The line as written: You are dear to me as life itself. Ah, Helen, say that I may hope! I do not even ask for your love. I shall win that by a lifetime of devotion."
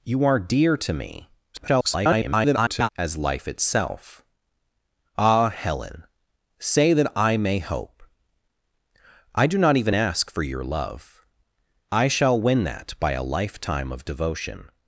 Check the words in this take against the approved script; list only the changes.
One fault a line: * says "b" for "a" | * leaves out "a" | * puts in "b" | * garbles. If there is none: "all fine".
* garbles